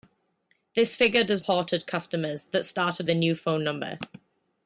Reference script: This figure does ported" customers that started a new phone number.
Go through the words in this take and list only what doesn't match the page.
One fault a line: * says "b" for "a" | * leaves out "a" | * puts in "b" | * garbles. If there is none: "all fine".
all fine